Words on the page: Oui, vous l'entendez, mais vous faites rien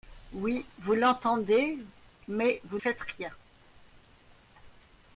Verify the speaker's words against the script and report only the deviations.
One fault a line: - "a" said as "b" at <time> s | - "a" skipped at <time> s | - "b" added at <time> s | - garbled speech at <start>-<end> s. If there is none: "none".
none